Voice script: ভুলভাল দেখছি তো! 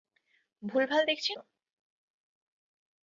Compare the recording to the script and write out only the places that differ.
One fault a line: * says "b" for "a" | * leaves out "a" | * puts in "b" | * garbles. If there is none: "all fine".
all fine